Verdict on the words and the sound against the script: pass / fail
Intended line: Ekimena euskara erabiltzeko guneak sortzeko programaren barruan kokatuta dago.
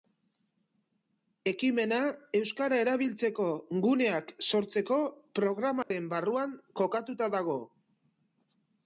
fail